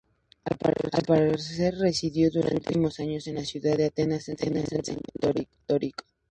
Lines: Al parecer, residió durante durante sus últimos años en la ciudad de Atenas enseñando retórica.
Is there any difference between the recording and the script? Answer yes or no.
yes